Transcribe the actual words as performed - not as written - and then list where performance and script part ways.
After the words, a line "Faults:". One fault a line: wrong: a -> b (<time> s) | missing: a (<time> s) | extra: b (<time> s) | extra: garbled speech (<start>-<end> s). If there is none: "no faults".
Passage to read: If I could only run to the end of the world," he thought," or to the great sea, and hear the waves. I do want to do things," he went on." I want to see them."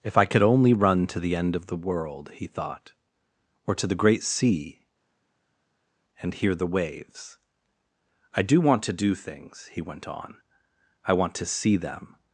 If I could only run to the end of the world," he thought," or to the great sea, and hear the waves. I do want to do things," he went on." I want to see them."
Faults:
no faults